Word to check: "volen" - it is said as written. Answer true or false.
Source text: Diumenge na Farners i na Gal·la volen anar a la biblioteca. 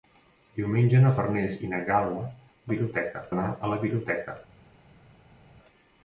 false